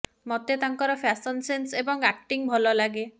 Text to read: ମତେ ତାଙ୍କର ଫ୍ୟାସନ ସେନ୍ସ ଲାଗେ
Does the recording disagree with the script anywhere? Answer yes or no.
yes